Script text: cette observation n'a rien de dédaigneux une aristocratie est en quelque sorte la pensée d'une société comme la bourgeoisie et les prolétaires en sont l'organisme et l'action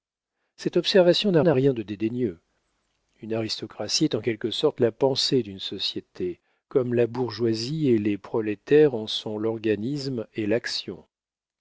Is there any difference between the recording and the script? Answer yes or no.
yes